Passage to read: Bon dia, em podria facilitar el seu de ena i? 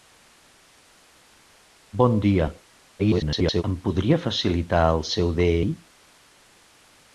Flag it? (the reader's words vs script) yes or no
yes